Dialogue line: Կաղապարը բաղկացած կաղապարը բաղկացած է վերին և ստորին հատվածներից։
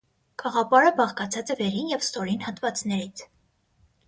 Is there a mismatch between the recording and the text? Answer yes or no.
yes